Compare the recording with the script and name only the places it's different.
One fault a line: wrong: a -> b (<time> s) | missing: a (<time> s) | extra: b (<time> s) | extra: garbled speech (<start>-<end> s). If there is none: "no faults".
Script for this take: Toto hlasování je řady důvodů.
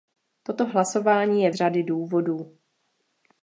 no faults